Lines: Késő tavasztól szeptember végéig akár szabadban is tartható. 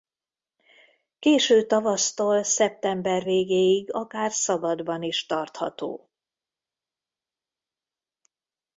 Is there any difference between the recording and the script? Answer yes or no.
no